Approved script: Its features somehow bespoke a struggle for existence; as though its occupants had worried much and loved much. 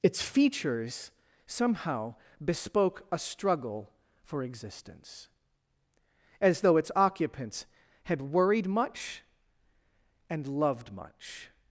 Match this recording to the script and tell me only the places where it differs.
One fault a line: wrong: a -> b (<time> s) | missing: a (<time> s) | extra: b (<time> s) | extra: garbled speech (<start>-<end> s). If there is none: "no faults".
no faults